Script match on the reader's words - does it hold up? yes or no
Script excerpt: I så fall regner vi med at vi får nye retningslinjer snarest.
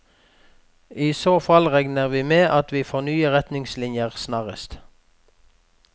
yes